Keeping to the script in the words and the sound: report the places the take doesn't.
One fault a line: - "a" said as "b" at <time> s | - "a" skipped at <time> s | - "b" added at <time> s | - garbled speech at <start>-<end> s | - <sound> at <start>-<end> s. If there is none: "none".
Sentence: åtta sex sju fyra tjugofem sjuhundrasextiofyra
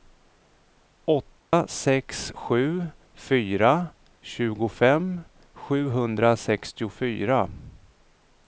- dropout at 1.4-1.5 s